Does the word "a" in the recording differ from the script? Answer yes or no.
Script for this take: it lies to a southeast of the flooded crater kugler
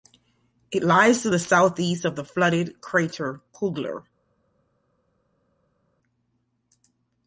yes